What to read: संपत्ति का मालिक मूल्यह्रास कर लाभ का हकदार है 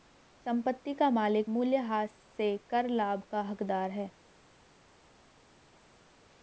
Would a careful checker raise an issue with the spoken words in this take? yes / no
yes